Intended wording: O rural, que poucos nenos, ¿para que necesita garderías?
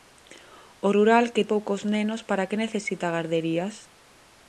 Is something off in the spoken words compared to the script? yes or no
no